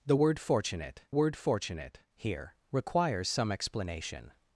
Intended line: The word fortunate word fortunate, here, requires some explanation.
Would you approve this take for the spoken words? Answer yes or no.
yes